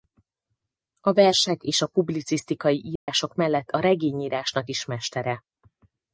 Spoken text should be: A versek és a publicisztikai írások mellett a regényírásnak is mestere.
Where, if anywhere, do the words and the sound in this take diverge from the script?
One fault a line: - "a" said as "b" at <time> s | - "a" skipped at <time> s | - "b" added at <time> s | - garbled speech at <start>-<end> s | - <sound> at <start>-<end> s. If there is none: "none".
- dropout at 3.0-3.1 s